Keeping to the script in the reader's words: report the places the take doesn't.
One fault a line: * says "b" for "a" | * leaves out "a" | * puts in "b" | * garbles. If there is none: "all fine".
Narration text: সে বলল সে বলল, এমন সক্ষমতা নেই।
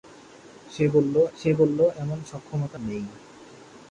all fine